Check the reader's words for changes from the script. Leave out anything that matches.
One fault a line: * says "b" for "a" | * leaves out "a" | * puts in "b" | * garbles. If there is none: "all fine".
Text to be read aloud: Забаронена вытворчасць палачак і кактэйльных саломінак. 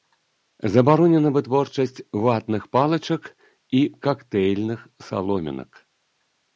* puts in "ватных"